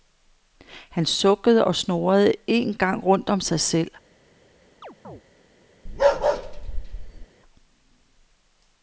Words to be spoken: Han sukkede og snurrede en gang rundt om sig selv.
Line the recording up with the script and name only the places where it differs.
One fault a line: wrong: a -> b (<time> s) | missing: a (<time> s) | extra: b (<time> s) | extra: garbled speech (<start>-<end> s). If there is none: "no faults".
no faults